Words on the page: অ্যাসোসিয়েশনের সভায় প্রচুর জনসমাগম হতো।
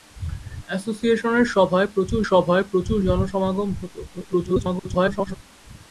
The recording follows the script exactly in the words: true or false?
false